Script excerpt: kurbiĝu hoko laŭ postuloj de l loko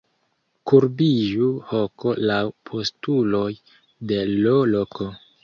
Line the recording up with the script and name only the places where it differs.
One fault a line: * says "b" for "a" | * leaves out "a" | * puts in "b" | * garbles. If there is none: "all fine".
all fine